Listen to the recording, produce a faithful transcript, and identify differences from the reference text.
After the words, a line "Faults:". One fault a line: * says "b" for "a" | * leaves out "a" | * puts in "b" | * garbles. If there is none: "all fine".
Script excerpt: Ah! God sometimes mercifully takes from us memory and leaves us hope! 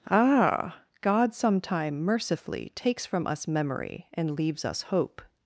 Ah! God sometime mercifully takes from us memory and leaves us hope!
Faults:
* says "sometime" for "sometimes"